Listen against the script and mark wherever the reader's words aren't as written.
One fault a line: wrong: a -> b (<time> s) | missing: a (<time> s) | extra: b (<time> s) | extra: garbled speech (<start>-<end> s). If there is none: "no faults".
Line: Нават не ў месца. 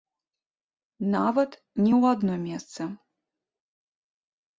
extra: адно (2.2 s)